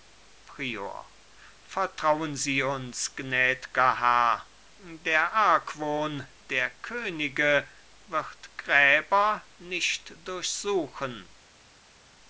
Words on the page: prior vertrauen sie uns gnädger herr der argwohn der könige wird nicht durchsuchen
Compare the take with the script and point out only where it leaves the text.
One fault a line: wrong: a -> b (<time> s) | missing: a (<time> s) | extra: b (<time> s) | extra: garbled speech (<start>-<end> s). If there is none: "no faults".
extra: gräber (8.6 s)